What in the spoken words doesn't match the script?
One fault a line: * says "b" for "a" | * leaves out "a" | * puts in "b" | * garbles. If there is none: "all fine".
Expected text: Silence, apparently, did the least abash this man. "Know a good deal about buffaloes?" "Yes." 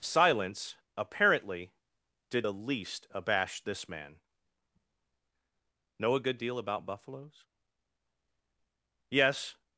all fine